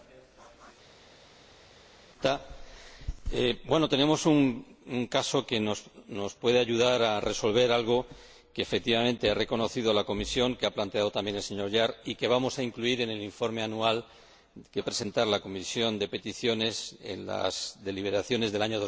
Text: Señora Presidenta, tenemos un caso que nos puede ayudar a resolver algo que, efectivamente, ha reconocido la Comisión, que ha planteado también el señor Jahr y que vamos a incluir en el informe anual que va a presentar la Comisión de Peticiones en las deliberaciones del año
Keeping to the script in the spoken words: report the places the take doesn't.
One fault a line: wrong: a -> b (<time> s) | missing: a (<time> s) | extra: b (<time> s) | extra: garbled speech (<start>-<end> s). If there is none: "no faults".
missing: va (14.8 s)